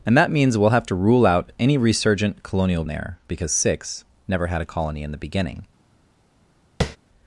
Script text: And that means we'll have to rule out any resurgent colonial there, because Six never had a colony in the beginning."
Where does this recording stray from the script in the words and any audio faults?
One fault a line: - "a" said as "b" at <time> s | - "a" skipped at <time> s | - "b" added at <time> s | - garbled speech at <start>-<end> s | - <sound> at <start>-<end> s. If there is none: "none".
- tap at 6.8-7.0 s